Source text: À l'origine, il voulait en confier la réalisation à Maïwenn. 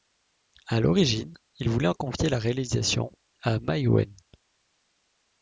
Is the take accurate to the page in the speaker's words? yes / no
yes